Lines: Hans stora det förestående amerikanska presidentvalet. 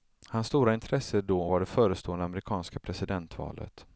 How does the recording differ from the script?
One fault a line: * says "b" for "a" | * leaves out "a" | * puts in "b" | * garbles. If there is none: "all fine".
* puts in "intresse då var"